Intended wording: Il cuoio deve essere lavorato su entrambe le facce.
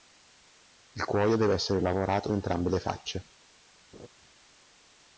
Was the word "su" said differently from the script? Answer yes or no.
yes